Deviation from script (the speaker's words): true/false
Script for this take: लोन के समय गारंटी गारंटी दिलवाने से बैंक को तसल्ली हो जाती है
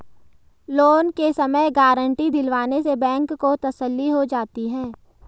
true